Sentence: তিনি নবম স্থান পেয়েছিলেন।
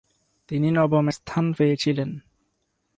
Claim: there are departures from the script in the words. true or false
false